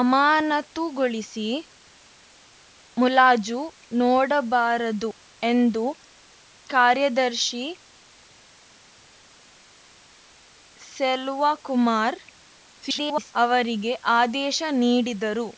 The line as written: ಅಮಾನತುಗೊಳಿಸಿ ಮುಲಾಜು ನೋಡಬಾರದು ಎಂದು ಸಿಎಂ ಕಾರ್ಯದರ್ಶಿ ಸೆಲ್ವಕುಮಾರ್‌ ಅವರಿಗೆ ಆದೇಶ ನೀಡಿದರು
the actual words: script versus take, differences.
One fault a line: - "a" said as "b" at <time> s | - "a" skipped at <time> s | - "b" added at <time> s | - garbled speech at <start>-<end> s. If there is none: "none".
- "ಸಿಎಂ" skipped at 5.8 s
- garbled speech at 12.8-13.3 s